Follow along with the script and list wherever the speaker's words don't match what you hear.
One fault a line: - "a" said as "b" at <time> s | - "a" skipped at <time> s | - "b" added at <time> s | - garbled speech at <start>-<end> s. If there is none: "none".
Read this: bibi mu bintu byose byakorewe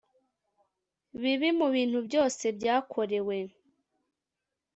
none